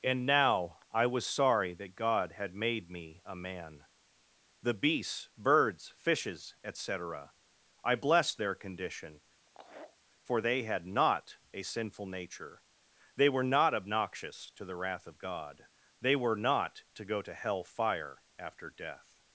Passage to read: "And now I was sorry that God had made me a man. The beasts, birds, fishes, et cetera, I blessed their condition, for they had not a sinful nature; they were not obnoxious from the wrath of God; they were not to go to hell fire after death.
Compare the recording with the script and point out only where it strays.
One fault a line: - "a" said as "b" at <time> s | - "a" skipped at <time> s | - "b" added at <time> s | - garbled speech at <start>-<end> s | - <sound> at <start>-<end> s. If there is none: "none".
- laugh at 9.5-10.0 s
- "from" said as "to" at 14.5 s